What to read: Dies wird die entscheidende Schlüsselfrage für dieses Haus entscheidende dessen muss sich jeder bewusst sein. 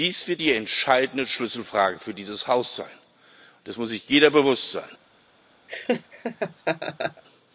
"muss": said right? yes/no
yes